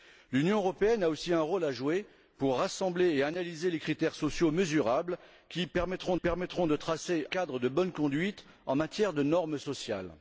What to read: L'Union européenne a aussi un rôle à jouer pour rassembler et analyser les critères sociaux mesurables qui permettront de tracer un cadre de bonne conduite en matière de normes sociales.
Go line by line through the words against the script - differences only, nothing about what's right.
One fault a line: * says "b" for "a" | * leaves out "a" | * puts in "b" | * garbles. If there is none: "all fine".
* puts in "permettront"
* leaves out "un"